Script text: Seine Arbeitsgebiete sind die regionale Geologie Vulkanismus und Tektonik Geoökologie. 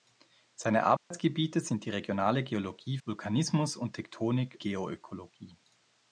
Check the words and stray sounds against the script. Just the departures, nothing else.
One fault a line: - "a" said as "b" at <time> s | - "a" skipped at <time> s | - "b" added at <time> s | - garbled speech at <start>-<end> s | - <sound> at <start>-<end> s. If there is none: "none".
- dropout at 1.0-1.1 s